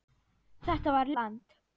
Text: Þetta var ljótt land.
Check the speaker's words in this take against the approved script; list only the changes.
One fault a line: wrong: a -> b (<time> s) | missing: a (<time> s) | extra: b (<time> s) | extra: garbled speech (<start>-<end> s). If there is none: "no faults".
missing: ljótt (1.1 s)